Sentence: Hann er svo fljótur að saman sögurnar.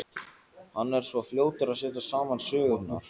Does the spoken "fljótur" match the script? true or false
true